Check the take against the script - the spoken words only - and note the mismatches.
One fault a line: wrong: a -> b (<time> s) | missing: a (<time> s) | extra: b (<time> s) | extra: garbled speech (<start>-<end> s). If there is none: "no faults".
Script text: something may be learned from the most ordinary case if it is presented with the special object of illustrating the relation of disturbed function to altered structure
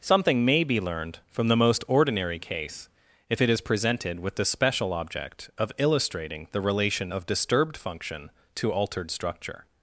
no faults